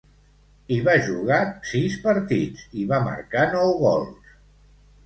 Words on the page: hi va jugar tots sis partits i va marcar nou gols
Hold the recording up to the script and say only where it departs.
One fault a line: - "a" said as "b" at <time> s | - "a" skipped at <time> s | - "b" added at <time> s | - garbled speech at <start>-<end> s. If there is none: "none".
- "tots" skipped at 1.4 s